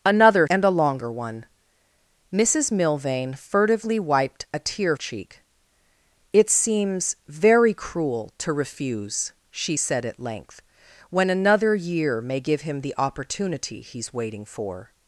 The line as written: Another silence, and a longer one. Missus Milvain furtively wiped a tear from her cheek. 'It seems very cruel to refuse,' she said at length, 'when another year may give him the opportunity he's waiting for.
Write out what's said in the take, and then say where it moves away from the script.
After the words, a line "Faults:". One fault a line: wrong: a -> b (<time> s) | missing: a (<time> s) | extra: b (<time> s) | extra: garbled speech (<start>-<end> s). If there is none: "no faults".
Another and a longer one. Missus Milvain furtively wiped a tear cheek. 'It seems very cruel to refuse,' she said at length, 'when another year may give him the opportunity he's waiting for.
Faults:
missing: silence (0.5 s)
missing: from her (5.0 s)